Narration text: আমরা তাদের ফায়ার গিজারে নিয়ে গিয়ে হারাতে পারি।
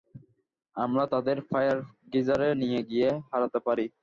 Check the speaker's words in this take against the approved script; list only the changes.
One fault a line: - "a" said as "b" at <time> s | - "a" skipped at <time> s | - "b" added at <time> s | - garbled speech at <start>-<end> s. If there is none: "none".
none